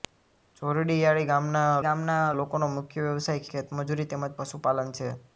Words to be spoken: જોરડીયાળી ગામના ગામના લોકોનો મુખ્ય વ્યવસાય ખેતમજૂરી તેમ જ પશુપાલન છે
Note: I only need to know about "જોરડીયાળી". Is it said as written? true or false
true